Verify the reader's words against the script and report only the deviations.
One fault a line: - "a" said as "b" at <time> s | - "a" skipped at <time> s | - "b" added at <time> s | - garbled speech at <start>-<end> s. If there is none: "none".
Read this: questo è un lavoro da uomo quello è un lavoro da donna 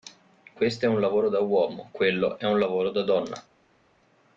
none